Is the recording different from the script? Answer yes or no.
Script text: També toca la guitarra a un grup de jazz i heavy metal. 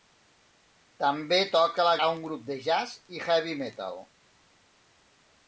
yes